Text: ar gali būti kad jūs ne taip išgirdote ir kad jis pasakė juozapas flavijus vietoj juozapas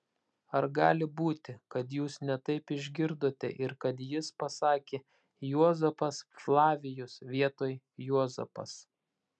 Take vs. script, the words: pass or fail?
pass